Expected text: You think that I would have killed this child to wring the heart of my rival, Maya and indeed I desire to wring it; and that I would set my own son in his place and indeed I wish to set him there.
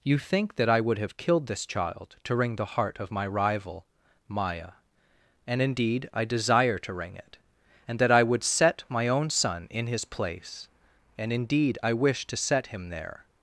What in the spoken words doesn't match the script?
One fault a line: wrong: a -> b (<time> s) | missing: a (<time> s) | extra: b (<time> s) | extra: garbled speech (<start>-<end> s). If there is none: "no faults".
no faults